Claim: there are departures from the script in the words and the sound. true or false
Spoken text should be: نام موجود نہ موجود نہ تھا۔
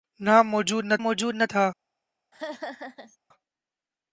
true